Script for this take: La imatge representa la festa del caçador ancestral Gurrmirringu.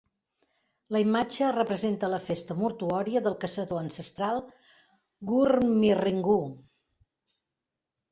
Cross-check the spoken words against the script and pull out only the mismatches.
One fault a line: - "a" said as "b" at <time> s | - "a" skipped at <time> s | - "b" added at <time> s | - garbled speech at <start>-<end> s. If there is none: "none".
- "mortuòria" added at 2.6 s